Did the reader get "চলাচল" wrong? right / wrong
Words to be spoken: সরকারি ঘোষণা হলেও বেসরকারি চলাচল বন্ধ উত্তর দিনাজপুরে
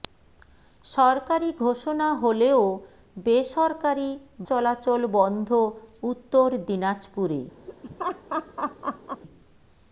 right